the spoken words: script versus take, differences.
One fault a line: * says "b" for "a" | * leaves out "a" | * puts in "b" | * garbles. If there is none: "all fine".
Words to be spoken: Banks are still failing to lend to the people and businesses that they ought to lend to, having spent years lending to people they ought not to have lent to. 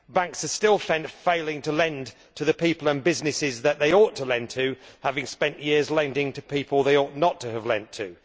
all fine